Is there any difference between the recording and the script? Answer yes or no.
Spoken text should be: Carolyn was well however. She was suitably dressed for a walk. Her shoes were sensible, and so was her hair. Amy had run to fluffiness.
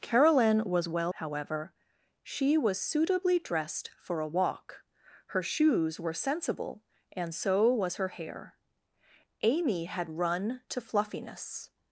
no